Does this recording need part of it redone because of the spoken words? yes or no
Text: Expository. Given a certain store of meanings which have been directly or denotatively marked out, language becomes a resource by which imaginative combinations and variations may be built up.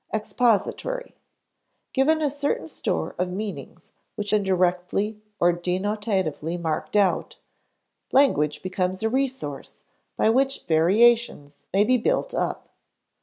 yes